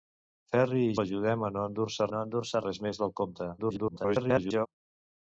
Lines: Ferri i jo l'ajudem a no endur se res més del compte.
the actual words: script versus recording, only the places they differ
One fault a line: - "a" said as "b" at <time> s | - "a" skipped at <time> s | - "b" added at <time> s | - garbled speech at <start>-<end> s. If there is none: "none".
- "jo" skipped at 0.9 s
- "no endur se" added at 2.1 s
- garbled speech at 3.6-4.7 s